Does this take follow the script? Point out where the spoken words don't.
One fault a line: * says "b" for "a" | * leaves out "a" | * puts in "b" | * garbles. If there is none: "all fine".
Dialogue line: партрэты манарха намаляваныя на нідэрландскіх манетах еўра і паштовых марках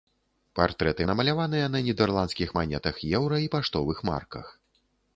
* leaves out "манарха"